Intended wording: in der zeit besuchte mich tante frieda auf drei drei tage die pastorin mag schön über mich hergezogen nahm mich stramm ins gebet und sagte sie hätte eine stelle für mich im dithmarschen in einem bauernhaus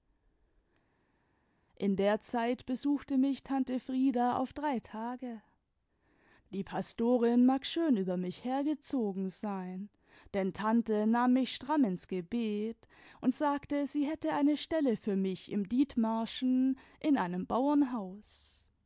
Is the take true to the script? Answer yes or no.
no